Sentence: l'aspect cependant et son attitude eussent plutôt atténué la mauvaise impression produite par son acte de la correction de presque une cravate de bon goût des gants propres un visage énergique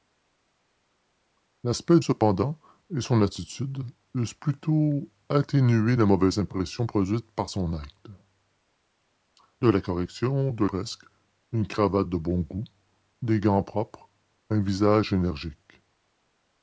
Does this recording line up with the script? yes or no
yes